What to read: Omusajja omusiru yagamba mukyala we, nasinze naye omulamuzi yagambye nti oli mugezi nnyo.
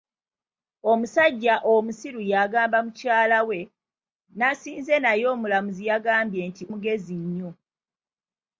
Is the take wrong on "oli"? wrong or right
wrong